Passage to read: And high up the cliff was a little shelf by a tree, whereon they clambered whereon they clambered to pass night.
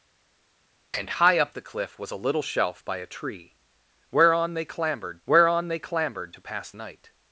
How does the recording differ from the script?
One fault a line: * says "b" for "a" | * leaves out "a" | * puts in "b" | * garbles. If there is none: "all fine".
all fine